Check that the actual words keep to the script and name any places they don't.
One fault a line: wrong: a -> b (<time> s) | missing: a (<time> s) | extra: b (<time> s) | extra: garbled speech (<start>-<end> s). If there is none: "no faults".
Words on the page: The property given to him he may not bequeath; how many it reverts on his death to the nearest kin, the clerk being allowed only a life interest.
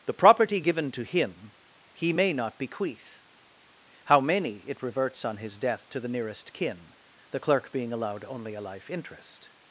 no faults